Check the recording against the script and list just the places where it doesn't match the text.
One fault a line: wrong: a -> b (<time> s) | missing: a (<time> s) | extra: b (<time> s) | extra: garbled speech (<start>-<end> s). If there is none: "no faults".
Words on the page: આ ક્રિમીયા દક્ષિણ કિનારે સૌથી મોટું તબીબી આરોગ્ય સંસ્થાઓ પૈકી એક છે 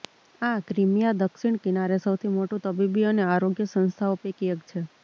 extra: અને (3.1 s)